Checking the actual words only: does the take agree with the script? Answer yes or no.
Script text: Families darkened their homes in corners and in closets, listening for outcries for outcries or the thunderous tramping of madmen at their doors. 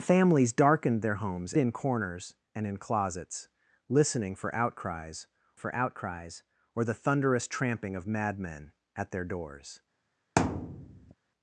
yes